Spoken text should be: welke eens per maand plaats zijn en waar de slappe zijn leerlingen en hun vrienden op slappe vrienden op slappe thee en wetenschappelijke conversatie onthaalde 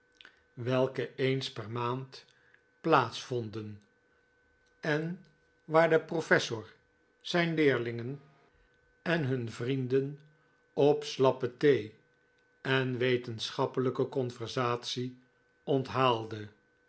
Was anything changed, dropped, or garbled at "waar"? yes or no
no